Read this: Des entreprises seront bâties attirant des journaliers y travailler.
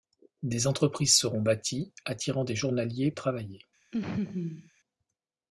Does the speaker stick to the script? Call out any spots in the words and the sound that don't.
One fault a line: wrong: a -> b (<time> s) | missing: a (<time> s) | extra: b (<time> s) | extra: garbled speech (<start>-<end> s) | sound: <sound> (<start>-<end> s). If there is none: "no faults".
sound: laugh (3.9-4.7 s)